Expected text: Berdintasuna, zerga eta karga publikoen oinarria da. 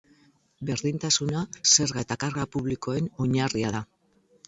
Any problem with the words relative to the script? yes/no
no